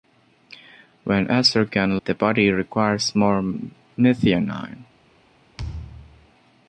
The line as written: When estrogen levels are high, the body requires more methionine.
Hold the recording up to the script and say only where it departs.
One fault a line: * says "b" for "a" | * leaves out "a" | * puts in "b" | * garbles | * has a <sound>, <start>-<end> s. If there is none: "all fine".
* leaves out "levels are high"
* has a thud, 5.6-6.3 s